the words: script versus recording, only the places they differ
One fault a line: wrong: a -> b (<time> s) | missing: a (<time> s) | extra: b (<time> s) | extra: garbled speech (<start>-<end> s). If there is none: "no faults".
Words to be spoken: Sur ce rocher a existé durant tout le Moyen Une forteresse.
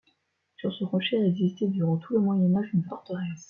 extra: Âge (2.5 s)